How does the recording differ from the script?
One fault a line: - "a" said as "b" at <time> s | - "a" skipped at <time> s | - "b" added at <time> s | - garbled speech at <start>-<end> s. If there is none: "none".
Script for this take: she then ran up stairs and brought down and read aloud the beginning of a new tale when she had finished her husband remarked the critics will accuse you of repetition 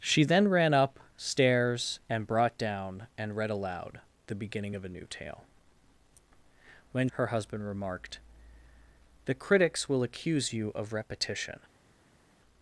- "she had finished" skipped at 7.1 s